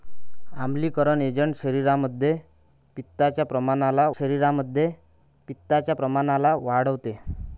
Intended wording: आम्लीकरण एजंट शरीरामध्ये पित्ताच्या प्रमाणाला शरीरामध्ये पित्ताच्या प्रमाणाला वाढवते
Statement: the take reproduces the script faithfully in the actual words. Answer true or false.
true